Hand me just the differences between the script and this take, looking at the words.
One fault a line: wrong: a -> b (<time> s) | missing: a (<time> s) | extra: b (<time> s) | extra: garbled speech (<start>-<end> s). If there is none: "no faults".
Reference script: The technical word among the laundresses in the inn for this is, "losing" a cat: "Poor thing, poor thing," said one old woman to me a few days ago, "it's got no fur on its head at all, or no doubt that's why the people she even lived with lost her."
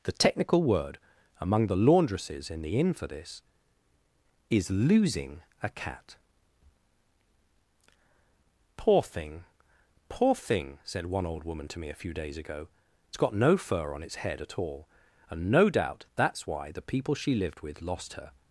wrong: or -> and (15.3 s)
missing: even (17.3 s)